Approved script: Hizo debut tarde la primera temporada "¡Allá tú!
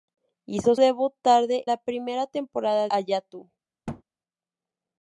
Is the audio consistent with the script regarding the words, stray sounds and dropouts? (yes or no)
no